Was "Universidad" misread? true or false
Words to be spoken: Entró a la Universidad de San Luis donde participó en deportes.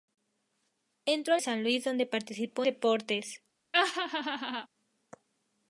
true